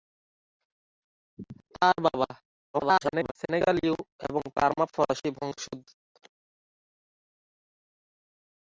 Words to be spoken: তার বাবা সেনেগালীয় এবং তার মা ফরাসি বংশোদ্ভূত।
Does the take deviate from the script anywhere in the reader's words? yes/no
yes